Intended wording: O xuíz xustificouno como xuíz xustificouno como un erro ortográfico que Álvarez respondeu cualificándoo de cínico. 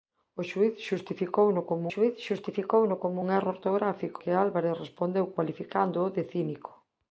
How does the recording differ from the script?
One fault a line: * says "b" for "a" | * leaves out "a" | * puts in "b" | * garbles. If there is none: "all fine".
all fine